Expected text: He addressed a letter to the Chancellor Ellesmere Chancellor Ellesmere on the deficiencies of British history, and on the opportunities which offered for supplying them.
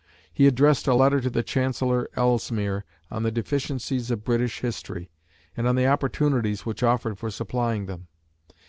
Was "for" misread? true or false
false